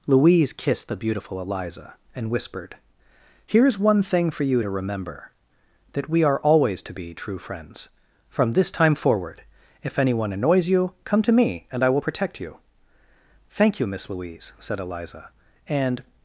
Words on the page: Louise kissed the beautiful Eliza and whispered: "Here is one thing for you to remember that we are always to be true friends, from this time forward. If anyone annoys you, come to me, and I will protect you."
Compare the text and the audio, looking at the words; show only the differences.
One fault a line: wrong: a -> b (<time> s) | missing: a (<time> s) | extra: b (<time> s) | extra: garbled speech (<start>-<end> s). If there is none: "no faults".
extra: Thank you Miss Louise said Eliza and (13.5 s)